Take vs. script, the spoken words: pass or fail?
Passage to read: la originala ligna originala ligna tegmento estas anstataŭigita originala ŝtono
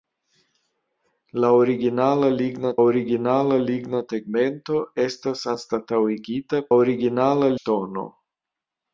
pass